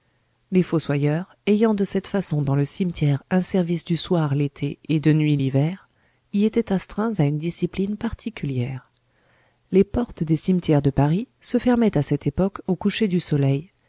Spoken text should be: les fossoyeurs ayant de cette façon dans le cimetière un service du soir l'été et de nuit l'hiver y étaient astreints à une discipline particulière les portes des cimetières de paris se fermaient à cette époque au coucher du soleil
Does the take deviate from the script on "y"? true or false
false